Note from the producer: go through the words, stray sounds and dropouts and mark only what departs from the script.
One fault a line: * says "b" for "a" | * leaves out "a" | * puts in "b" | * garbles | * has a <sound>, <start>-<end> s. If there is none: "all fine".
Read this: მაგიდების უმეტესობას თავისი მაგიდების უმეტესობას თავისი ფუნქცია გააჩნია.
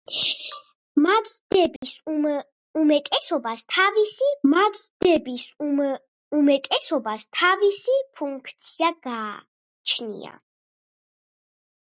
* has a dropout, 1.8-1.8 s